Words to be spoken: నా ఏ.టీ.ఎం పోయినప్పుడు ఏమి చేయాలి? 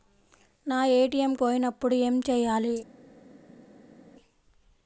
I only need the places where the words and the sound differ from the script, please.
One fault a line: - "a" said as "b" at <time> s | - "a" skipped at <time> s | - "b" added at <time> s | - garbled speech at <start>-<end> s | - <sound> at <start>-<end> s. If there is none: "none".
none